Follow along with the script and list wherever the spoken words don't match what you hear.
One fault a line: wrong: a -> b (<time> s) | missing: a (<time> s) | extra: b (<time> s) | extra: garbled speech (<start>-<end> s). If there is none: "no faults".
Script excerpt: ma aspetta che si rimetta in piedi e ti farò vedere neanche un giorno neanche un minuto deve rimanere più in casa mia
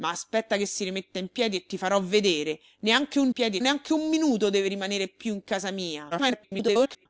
wrong: giorno -> piedi (3.3 s)
extra: garbled speech (6.1-7.1 s)